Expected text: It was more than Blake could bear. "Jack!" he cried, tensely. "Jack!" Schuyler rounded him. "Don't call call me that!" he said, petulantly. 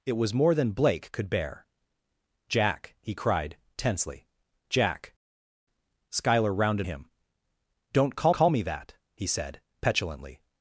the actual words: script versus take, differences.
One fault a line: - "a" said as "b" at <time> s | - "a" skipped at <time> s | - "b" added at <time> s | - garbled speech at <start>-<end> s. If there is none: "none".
none